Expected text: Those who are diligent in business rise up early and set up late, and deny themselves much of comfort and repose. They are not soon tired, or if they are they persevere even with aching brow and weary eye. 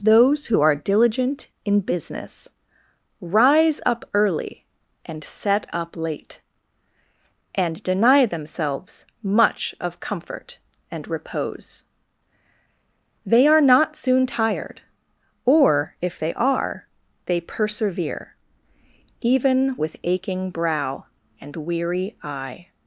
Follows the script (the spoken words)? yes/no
yes